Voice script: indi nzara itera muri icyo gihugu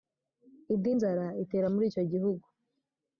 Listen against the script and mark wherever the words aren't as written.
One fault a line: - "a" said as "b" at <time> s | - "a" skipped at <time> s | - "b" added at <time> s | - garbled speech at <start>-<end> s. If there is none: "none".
none